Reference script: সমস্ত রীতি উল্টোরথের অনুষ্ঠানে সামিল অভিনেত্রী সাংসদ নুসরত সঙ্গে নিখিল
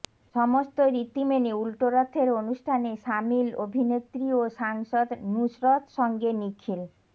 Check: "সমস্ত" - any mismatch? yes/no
no